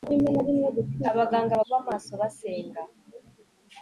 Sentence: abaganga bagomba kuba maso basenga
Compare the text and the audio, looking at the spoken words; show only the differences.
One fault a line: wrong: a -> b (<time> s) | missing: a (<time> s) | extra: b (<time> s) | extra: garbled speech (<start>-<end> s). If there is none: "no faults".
missing: bagomba (1.6 s)